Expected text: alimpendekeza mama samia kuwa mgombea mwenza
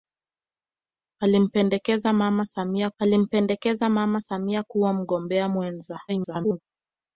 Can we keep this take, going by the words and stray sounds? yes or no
no